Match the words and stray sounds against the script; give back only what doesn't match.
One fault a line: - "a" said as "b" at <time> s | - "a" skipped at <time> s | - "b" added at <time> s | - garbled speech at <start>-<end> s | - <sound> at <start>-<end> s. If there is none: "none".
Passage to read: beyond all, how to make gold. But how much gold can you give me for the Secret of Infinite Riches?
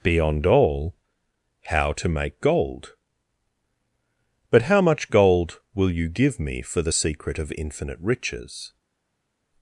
- "can" said as "will" at 5.7 s